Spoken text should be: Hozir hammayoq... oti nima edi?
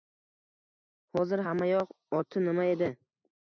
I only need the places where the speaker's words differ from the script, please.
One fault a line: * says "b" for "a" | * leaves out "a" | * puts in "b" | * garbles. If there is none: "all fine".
all fine